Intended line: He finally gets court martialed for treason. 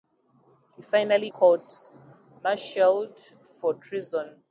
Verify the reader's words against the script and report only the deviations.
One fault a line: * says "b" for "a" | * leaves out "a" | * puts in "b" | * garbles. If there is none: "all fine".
* leaves out "gets"